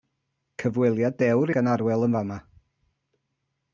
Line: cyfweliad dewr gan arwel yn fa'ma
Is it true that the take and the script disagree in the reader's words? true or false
false